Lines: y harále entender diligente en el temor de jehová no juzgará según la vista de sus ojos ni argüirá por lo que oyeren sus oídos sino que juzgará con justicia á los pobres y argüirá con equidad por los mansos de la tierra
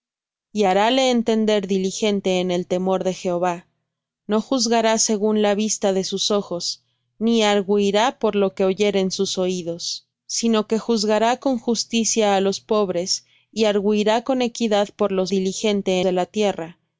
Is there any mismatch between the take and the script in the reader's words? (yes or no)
yes